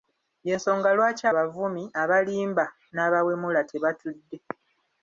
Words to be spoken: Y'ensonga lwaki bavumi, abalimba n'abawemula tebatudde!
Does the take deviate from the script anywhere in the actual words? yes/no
no